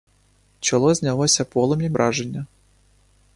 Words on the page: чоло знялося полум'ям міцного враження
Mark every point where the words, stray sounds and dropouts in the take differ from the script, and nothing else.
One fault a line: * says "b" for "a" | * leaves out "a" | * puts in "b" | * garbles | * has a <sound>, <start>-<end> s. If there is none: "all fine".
* leaves out "міцного"